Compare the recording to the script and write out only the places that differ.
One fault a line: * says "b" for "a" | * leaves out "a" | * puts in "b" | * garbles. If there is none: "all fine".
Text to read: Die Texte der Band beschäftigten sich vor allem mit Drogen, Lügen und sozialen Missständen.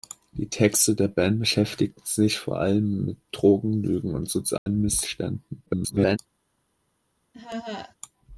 * garbles